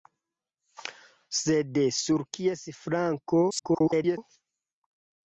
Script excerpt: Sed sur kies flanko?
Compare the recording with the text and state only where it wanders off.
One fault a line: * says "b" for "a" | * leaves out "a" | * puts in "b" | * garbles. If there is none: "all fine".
* garbles